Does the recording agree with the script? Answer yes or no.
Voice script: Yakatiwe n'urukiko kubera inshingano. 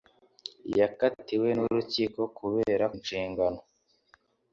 yes